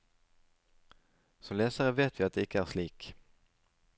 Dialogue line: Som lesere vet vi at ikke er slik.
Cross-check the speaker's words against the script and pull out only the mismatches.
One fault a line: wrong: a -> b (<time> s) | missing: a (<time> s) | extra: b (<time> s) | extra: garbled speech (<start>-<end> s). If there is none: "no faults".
extra: det (2.4 s)